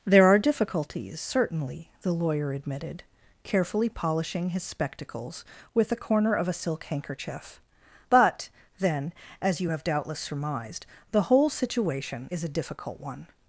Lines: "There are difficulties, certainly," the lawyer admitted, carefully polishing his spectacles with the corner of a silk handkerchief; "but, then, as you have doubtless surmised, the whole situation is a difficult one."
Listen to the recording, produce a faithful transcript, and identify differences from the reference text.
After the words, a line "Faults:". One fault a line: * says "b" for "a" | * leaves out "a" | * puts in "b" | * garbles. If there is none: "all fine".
"There are difficulties, certainly," the lawyer admitted, carefully polishing his spectacles with the corner of a silk handkerchief; "but, then, as you have doubtless surmised, the whole situation is a difficult one."
Faults:
all fine